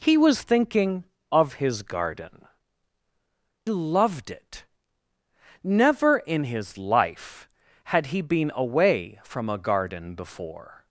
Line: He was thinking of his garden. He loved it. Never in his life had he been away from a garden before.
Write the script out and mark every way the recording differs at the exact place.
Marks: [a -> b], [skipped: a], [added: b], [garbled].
He was thinking of his garden. [skipped: He] loved it. Never in his life had he been away from a garden before.